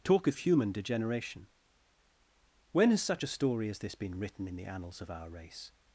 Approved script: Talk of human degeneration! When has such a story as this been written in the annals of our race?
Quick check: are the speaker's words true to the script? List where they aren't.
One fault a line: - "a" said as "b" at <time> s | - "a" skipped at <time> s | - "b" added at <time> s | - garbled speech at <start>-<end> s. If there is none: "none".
none